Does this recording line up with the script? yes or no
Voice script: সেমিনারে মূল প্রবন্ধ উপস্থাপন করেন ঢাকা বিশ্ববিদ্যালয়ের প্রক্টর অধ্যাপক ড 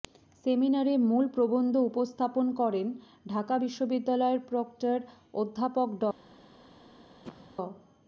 yes